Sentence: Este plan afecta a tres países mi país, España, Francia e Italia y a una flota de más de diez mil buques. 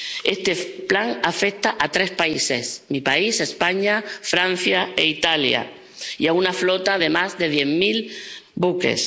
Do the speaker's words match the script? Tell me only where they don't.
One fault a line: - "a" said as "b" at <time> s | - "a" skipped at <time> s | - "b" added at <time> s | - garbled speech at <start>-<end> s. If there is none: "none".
none